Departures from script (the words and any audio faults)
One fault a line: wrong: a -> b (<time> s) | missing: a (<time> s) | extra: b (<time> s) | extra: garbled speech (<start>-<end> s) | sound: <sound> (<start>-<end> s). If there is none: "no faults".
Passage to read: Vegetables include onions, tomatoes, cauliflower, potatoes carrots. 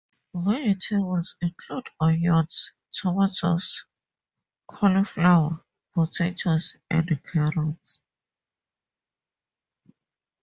extra: and (6.9 s)